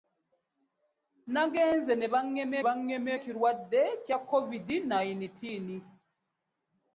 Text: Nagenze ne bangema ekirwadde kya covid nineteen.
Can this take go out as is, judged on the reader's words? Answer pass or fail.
fail